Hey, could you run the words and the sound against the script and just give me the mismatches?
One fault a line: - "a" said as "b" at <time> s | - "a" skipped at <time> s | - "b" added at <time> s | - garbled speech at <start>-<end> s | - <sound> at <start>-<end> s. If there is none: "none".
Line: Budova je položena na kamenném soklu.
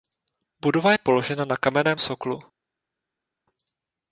none